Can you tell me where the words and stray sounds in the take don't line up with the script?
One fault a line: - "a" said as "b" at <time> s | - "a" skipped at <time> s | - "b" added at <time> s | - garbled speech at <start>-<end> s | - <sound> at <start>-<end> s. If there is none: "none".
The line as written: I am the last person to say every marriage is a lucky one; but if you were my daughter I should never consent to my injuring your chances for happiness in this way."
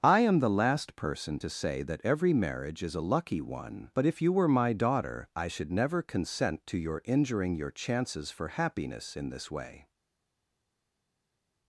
- "that" added at 1.8 s
- "my" said as "your" at 6.8 s